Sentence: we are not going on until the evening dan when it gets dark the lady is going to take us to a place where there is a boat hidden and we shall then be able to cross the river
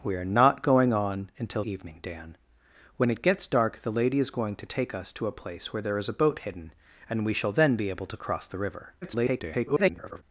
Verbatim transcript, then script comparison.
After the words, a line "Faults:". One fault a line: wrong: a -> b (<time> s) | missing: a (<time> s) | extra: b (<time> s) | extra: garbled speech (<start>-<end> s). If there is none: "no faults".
we are not going on until evening dan when it gets dark the lady is going to take us to a place where there is a boat hidden and we shall then be able to cross the river [garbled]
Faults:
missing: the (1.6 s)
extra: garbled speech (9.0-10.2 s)